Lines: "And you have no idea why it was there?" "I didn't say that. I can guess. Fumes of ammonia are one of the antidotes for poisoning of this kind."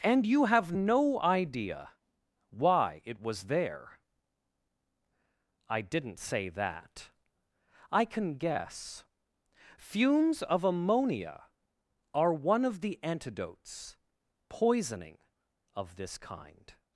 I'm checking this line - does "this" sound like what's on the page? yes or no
yes